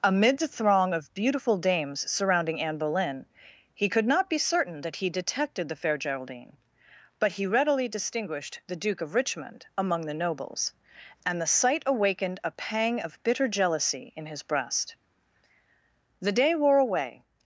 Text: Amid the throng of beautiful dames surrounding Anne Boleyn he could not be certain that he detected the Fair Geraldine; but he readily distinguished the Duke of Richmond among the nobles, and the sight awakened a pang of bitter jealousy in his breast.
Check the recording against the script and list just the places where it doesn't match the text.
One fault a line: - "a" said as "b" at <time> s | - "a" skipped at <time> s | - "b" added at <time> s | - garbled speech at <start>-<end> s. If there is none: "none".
- "The day wore away" added at 16.2 s